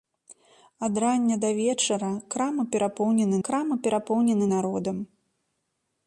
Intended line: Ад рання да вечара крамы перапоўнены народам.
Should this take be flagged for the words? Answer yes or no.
yes